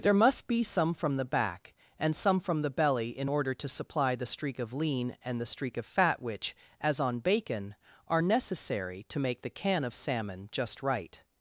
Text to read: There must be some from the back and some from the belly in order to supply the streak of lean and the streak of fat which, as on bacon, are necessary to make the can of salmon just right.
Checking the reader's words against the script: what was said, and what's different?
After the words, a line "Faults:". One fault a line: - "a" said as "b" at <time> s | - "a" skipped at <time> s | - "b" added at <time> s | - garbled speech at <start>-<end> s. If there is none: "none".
There must be some from the back and some from the belly in order to supply the streak of lean and the streak of fat which, as on bacon, are necessary to make the can of salmon just right.
Faults:
none